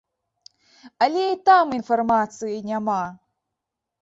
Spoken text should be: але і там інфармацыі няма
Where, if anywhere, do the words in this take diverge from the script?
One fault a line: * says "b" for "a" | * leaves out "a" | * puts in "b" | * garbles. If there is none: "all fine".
all fine